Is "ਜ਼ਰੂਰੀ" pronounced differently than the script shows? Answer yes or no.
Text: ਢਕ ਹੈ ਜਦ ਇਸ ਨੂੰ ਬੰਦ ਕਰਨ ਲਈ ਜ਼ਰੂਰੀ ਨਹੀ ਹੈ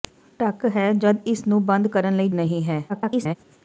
yes